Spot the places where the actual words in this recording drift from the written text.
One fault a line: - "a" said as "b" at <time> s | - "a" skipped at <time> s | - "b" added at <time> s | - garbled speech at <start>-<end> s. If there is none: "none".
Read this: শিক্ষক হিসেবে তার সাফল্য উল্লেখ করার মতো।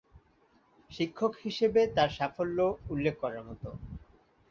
none